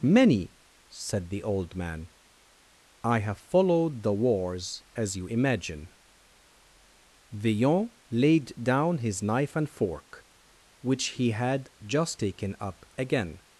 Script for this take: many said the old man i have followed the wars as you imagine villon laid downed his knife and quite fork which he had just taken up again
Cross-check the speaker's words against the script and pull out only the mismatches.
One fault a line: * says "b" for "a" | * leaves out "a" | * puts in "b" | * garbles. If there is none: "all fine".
* says "down" for "downed"
* leaves out "quite"